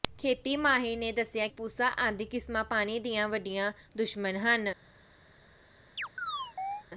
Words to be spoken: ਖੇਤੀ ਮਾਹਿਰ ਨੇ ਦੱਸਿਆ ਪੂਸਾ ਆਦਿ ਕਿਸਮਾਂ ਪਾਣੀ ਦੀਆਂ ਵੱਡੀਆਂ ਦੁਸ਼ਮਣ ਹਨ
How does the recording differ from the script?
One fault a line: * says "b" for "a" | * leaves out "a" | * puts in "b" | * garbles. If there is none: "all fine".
all fine